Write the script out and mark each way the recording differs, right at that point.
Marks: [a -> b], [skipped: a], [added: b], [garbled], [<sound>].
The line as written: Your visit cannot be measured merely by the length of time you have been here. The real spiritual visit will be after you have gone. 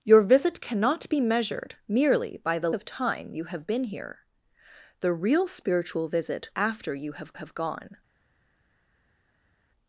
Your visit cannot be measured merely by the [skipped: length] of time you have been here. The real spiritual visit [skipped: will be] after you have [added: have] gone.